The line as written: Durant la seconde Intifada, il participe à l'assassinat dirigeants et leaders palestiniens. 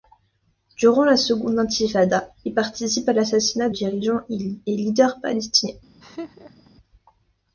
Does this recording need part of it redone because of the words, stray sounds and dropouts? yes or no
yes